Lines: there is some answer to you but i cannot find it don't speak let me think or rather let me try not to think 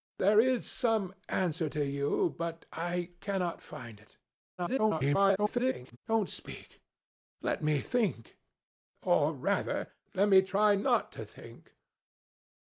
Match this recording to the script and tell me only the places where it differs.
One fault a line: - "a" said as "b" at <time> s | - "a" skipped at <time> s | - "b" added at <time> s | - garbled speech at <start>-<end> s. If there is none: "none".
- garbled speech at 4.6-6.0 s